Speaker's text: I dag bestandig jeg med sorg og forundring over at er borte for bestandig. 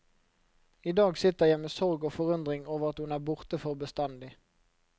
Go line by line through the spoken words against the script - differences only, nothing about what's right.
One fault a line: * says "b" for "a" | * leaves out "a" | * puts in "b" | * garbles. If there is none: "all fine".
* says "sitter" for "bestandig"
* puts in "hun"